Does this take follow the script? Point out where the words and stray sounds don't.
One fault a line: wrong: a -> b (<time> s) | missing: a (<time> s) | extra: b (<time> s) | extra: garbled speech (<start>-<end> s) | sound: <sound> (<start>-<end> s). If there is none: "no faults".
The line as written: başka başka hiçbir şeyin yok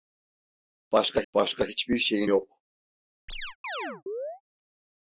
sound: chirp (3.3-4.4 s)